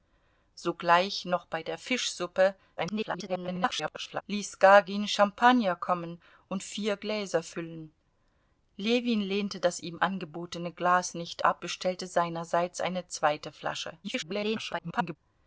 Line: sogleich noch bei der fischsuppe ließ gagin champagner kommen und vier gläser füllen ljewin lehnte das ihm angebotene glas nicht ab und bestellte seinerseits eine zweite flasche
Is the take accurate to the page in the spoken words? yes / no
no